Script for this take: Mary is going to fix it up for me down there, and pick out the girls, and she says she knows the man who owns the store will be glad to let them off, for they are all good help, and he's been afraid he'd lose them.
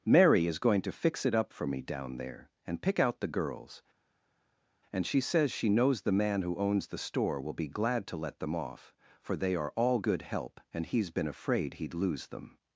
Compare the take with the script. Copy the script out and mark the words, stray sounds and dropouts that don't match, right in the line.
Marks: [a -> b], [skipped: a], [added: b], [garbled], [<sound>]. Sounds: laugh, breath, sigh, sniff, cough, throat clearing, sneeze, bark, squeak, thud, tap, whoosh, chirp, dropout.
Mary is going to fix it up for me down there, and pick out the girls, and she says she knows the man who owns the store will be glad to let them off, for they are all good help, and he's been afraid he'd lose them.